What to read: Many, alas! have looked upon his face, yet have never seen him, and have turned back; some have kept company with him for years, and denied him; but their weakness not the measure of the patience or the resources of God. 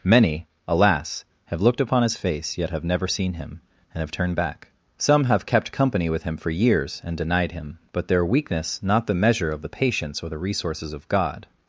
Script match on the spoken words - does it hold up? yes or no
yes